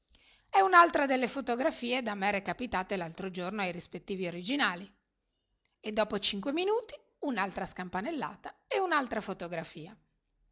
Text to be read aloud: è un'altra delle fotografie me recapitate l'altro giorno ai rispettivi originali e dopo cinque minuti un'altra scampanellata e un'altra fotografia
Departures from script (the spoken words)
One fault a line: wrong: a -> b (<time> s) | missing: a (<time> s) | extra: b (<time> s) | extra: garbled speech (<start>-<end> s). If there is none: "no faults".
extra: da (2.0 s)